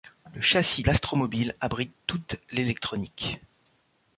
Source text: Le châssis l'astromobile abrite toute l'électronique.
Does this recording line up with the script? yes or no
yes